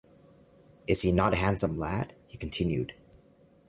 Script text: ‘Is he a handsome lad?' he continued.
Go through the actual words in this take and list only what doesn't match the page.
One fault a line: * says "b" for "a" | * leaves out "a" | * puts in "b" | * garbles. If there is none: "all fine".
* puts in "not"